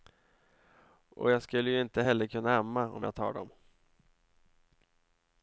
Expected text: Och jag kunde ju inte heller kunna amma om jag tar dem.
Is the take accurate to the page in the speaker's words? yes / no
no